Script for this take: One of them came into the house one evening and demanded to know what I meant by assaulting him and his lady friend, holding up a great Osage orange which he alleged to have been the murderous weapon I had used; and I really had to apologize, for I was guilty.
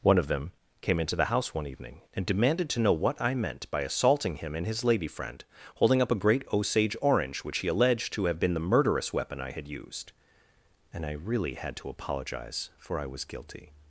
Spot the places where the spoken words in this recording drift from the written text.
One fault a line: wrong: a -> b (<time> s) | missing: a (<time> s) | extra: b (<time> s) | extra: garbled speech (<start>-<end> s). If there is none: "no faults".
no faults